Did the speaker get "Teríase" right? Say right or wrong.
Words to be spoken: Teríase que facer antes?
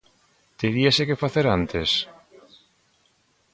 right